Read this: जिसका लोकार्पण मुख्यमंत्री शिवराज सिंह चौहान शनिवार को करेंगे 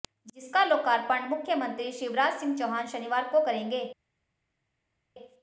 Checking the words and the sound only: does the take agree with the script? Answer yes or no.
yes